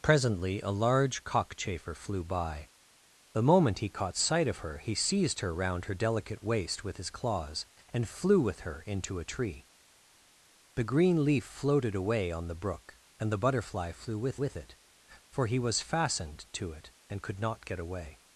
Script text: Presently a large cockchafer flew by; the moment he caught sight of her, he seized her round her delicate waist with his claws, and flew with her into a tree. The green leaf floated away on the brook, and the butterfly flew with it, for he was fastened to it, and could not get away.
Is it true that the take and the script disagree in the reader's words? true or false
true